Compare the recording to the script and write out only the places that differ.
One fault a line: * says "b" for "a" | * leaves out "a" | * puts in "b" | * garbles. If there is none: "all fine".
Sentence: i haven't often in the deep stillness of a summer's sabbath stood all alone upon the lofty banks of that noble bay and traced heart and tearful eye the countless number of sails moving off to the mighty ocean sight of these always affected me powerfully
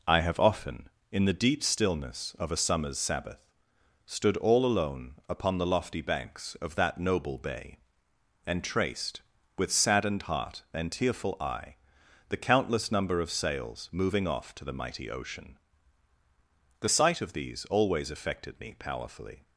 * says "have" for "haven't"
* puts in "with saddened"
* puts in "the"